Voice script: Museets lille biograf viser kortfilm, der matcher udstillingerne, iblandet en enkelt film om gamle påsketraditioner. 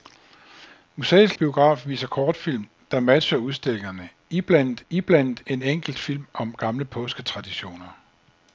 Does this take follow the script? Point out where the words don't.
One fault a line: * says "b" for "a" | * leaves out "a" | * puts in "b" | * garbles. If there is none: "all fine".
* leaves out "lille"
* puts in "iblandet"